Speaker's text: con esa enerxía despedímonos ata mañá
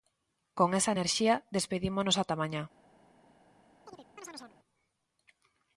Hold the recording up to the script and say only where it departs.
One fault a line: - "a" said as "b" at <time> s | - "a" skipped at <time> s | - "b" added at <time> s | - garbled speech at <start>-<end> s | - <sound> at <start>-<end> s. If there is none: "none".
- chirp at 3.8-4.6 s